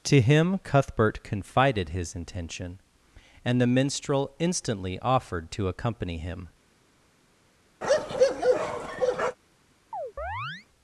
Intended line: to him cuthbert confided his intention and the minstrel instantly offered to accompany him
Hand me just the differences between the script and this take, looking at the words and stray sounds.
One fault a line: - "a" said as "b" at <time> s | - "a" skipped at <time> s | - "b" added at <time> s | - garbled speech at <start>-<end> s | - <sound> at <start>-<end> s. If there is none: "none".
- bark at 7.8-9.4 s
- chirp at 9.9-10.7 s